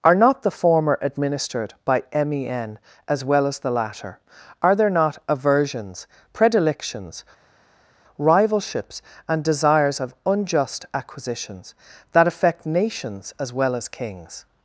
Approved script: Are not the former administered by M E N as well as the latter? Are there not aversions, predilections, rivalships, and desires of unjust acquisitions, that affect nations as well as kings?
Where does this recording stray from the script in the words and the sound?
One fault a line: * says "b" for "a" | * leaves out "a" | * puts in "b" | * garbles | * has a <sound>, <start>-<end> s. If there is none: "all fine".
all fine